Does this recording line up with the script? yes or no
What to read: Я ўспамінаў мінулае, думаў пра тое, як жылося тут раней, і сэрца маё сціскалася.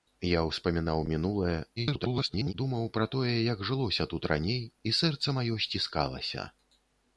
no